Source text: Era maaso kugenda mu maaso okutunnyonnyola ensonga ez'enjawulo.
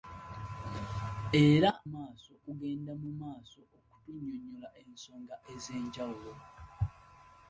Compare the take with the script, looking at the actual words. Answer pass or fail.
pass